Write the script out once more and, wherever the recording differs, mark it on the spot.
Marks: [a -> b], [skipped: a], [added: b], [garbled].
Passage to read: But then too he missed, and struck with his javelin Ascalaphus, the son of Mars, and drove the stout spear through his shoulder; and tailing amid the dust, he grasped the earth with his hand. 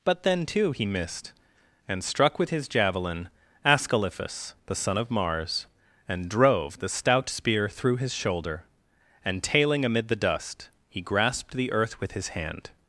But then too he missed, and struck with his javelin Ascalaphus, the son of Mars, and drove the stout spear through his shoulder; and tailing amid the dust, he grasped the earth with his hand.